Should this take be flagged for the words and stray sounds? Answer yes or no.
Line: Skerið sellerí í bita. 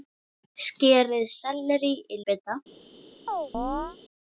yes